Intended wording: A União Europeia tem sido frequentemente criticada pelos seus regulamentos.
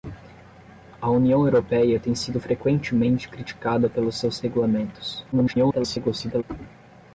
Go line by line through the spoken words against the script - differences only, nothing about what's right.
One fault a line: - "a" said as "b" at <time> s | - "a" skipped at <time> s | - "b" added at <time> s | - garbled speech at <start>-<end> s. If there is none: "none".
- garbled speech at 5.3-6.4 s